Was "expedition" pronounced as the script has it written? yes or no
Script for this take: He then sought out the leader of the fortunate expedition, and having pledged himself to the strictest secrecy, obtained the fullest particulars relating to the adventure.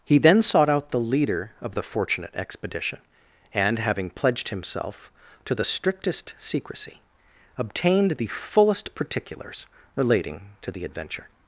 yes